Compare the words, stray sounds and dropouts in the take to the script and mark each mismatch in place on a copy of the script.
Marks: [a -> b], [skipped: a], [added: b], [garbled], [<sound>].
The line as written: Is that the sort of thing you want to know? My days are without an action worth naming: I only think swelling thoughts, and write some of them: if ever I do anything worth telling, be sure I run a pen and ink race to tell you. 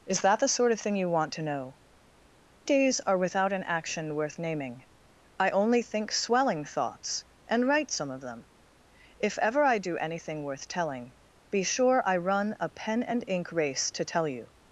Is that the sort of thing you want to know? [skipped: My] days are without an action worth naming: I only think swelling thoughts, and write some of them: if ever I do anything worth telling, be sure I run a pen and ink race to tell you.